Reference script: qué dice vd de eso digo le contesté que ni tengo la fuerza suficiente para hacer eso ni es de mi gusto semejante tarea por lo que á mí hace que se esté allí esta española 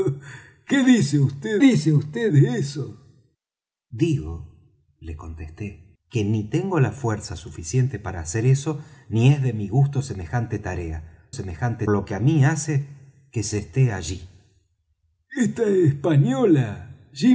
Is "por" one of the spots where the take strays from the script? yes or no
yes